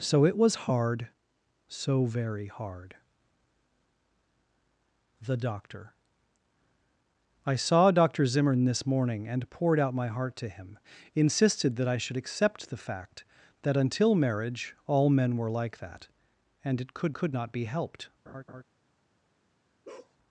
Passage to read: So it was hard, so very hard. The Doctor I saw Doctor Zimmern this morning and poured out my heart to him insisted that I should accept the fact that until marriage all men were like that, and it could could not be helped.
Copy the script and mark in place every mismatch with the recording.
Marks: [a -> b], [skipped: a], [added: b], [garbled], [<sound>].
So it was hard, so very hard. The Doctor I saw Doctor Zimmern this morning and poured out my heart to him insisted that I should accept the fact that until marriage all men were like that, and it could could not be helped. [laugh] [bark]